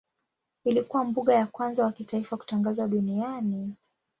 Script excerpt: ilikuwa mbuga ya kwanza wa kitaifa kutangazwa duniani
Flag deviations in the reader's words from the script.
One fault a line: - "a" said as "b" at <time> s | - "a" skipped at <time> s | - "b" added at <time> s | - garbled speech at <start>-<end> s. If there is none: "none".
none